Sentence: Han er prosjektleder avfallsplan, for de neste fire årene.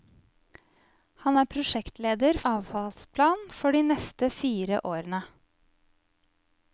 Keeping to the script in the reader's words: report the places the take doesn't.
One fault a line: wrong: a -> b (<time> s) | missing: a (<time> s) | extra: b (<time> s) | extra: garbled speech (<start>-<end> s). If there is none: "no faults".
no faults